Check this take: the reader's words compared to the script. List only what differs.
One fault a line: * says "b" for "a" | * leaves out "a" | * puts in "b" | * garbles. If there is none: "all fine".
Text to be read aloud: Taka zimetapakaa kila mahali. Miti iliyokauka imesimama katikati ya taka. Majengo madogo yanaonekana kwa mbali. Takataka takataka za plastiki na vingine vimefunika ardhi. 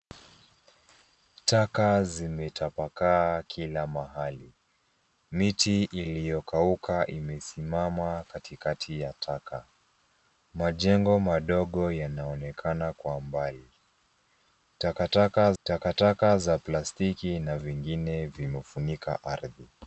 all fine